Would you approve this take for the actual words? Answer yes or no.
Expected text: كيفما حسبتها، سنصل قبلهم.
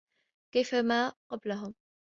no